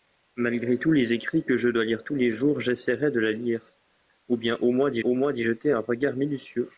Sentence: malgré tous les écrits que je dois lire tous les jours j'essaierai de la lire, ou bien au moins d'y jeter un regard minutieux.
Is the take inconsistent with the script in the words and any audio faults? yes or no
yes